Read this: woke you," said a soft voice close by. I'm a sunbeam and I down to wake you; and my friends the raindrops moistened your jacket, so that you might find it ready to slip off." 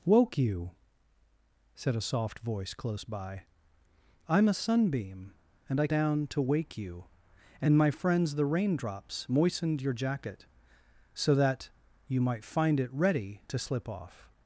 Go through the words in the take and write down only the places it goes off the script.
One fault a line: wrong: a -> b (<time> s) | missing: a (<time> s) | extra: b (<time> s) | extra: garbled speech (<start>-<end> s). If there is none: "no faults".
no faults